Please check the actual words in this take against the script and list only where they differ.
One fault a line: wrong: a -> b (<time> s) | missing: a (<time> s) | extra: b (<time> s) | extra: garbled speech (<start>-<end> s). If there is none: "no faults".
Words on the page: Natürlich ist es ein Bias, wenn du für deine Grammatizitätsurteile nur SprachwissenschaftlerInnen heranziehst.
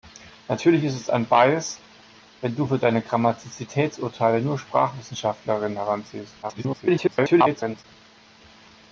extra: garbled speech (6.4-7.8 s)